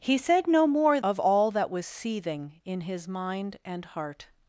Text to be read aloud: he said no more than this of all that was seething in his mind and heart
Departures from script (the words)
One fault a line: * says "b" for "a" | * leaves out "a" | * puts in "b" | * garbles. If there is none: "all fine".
* leaves out "than this"